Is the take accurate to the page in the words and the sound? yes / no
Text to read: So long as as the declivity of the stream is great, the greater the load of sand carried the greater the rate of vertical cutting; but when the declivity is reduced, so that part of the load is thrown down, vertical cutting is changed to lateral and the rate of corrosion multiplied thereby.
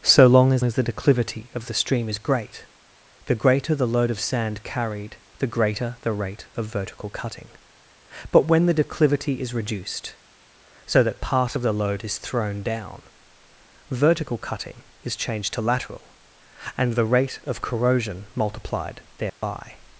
no